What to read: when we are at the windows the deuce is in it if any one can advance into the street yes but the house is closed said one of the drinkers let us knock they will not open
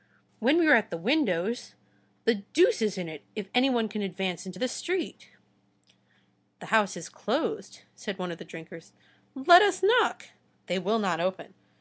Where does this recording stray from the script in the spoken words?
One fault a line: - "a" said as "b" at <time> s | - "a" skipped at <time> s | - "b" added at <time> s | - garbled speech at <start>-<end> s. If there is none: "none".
- "yes but" skipped at 5.3 s